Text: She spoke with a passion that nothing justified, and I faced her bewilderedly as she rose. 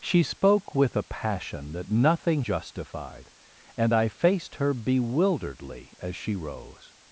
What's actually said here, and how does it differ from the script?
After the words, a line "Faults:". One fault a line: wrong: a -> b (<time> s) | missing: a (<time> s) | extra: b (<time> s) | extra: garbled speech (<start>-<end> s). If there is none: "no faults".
She spoke with a passion that nothing justified, and I faced her bewilderedly as she rose.
Faults:
no faults